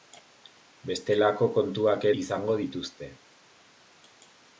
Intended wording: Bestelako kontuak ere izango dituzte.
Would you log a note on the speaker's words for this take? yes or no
yes